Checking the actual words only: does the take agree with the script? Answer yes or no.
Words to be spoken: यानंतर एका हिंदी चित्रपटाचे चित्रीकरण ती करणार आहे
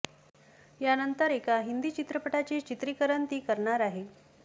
yes